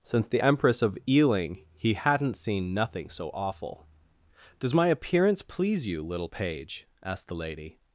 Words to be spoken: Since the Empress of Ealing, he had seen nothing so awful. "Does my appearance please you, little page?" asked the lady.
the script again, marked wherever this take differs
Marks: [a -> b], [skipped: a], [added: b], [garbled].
Since the Empress of Ealing, he [had -> hadn't] seen nothing so awful. "Does my appearance please you, little page?" asked the lady.